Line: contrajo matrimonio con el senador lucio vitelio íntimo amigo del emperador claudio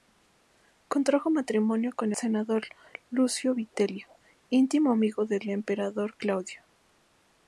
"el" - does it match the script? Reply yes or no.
no